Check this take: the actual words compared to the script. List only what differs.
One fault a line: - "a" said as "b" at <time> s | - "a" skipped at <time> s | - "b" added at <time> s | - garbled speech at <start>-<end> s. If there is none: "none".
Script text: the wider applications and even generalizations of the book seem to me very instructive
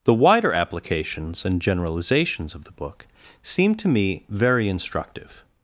- "even" skipped at 1.6 s